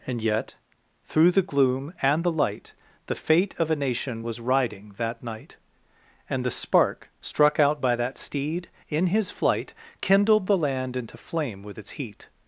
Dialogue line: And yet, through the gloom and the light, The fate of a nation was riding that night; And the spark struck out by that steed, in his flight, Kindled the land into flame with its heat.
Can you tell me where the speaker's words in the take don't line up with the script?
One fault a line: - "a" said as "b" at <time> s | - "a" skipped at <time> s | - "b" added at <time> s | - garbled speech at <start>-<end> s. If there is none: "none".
none